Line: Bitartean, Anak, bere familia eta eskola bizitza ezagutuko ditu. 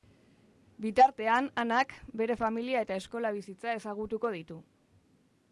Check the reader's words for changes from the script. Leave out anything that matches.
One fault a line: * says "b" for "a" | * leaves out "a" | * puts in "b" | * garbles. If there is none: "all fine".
all fine